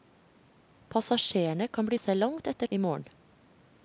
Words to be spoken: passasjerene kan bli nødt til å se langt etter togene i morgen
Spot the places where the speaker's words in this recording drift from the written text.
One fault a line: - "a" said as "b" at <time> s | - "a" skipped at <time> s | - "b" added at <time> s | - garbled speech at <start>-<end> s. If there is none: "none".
- "nødt til" skipped at 2.0 s
- "togene" skipped at 2.7 s